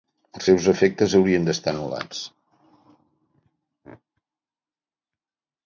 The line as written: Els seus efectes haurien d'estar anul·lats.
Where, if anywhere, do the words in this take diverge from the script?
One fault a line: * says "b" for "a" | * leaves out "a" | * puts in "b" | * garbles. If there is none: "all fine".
all fine